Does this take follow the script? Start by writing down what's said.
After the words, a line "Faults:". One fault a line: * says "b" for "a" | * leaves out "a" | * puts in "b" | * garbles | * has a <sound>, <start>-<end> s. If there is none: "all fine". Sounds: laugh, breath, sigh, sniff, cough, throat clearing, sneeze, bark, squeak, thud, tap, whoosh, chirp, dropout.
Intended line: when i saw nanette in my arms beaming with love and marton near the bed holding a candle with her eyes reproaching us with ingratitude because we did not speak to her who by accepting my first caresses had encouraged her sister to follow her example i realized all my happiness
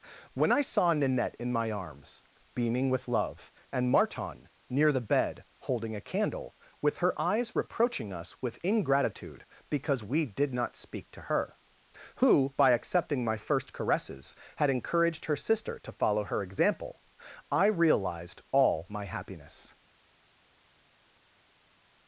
when i saw nanette in my arms beaming with love and marton near the bed holding a candle with her eyes reproaching us with ingratitude because we did not speak to her who by accepting my first caresses had encouraged her sister to follow her example i realized all my happiness
Faults:
all fine